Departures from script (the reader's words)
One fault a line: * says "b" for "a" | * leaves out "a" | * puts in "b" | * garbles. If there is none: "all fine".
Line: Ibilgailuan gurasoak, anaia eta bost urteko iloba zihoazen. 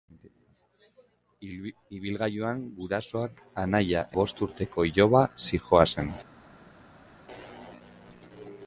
* leaves out "eta"